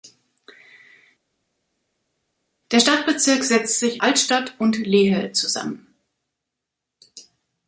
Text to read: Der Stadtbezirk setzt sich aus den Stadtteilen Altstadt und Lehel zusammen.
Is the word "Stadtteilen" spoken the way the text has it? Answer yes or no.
no